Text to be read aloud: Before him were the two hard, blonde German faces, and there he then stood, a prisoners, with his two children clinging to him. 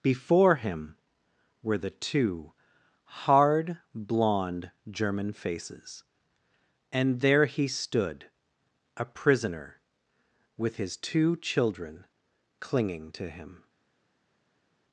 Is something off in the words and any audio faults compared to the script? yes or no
yes